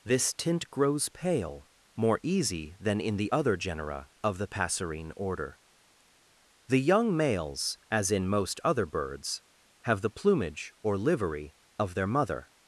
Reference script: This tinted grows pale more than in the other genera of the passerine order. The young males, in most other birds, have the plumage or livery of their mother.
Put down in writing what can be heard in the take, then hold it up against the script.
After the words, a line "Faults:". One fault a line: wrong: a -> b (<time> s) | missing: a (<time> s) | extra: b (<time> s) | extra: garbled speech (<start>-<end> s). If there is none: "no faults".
This tint grows pale more easy than in the other genera of the passerine order. The young males, as in most other birds, have the plumage or livery of their mother.
Faults:
wrong: tinted -> tint (0.3 s)
extra: easy (2.2 s)
extra: as (7.9 s)